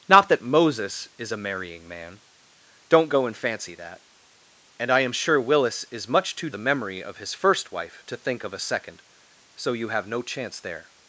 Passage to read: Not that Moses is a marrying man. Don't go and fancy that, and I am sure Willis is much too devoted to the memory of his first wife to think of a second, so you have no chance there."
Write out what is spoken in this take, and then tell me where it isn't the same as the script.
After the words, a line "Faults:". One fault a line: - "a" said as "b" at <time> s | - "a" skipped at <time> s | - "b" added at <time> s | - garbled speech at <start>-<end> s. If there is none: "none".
Not that Moses is a marrying man. Don't go and fancy that, and I am sure Willis is much too the memory of his first wife to think of a second, so you have no chance there."
Faults:
- "devoted to" skipped at 6.5 s